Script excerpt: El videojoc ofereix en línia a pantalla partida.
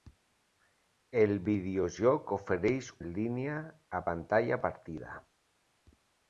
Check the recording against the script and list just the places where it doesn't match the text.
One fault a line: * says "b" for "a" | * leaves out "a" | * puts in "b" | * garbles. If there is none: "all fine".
all fine